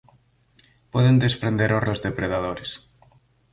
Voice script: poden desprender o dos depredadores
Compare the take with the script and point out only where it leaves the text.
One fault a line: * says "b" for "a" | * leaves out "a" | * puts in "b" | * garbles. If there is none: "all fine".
all fine